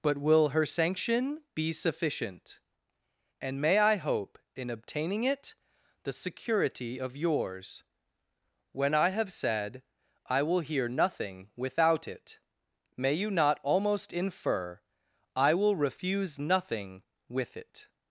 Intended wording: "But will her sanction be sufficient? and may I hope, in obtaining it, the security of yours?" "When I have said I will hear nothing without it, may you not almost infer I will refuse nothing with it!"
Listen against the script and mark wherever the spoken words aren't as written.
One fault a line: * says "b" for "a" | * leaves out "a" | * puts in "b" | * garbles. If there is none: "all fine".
all fine